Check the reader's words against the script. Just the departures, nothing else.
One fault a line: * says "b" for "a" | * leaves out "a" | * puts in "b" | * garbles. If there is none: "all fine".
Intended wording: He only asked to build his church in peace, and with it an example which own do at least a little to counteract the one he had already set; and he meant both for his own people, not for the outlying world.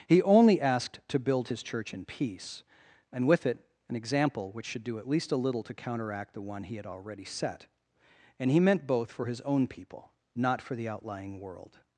* says "should" for "own"